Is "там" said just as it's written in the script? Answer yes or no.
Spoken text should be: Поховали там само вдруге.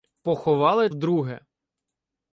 no